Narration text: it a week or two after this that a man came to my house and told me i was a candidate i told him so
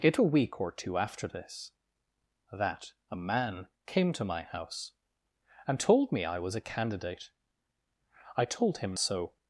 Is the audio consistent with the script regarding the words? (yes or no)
yes